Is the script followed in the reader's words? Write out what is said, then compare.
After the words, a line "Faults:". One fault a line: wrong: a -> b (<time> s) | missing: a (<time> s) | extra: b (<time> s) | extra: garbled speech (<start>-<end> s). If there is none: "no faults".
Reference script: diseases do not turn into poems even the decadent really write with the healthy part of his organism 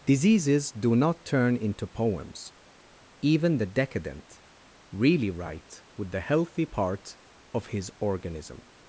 diseases do not turn into poems even the decadent really write with the healthy part of his organism
Faults:
no faults